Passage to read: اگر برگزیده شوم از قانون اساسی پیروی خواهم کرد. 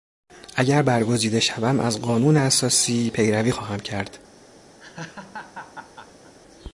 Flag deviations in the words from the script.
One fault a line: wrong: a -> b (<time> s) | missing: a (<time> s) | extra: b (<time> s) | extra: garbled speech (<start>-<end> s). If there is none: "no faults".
no faults